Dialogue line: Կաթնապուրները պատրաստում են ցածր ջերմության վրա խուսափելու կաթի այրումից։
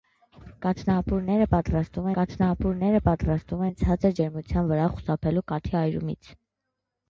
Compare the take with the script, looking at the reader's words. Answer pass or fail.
fail